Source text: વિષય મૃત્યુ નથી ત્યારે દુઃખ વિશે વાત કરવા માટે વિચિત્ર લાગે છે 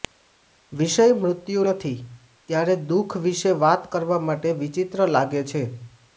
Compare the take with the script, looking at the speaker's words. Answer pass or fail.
pass